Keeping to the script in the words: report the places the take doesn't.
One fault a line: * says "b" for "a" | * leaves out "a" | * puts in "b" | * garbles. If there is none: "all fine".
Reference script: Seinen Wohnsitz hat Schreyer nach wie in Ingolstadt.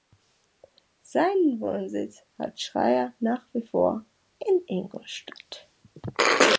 * puts in "vor"